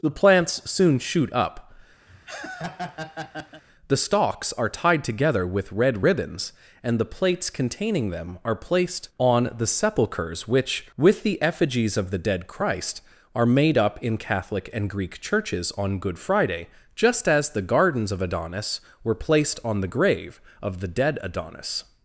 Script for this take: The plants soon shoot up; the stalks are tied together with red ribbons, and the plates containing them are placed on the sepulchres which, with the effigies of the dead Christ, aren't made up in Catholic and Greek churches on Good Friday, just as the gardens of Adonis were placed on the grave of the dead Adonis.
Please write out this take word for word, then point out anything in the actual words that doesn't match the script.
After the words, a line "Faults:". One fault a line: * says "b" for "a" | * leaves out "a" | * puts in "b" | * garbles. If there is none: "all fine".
The plants soon shoot up; the stalks are tied together with red ribbons, and the plates containing them are placed on the sepulchres which, with the effigies of the dead Christ, are made up in Catholic and Greek churches on Good Friday, just as the gardens of Adonis were placed on the grave of the dead Adonis.
Faults:
* says "are" for "aren't"